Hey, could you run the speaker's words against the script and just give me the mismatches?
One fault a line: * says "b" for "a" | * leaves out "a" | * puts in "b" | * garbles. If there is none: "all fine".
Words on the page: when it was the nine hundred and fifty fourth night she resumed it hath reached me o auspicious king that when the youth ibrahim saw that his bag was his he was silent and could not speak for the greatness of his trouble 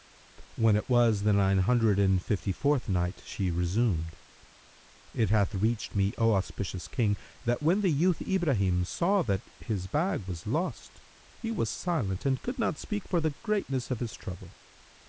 * says "lost" for "his"